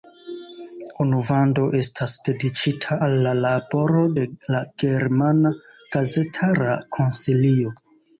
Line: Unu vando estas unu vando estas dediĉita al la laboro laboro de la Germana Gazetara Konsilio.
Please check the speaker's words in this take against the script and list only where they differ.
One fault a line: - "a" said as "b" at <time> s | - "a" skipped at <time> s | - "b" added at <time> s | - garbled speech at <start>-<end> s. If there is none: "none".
- "unu vando estas" skipped at 2.1 s
- "laboro" skipped at 4.0 s